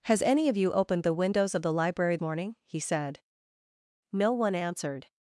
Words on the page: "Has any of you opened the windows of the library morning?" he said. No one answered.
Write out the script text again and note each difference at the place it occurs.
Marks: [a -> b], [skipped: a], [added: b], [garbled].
"Has any of you opened the windows of the library morning?" he said. No one answered.